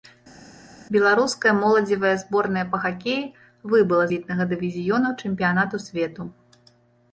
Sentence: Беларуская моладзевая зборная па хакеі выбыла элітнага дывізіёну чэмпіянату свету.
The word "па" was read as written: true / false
true